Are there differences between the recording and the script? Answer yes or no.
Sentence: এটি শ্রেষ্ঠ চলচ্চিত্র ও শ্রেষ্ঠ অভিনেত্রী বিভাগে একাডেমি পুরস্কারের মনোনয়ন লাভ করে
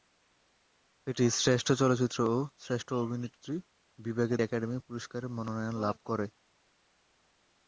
no